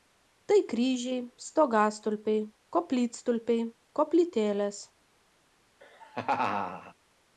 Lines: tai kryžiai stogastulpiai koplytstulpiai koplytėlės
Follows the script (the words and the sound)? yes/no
no